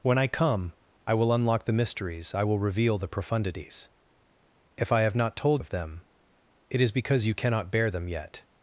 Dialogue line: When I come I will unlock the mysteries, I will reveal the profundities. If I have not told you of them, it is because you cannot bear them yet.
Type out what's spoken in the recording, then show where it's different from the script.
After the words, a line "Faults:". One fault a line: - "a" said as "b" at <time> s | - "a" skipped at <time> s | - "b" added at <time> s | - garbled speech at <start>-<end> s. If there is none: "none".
When I come I will unlock the mysteries, I will reveal the profundities. If I have not told of them, it is because you cannot bear them yet.
Faults:
- "you" skipped at 5.6 s